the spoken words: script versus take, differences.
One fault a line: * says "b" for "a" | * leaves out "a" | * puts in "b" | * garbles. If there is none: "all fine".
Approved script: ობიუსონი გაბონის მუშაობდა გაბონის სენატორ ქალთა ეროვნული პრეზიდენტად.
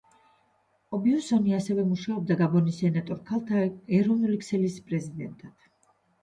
* says "ასევე" for "გაბონის"
* puts in "ქსელის"